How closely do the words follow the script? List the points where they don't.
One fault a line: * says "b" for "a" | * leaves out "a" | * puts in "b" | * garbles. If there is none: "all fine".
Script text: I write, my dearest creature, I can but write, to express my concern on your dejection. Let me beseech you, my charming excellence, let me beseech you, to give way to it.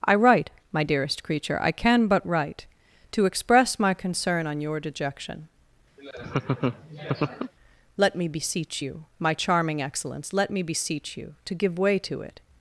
all fine